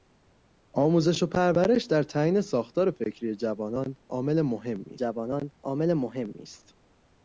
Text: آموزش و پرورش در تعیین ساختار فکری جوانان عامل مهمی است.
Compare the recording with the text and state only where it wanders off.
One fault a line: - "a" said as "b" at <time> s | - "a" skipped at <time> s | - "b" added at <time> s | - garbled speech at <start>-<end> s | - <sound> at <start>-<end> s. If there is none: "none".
- "جوانان عامل مهمی" added at 4.9 s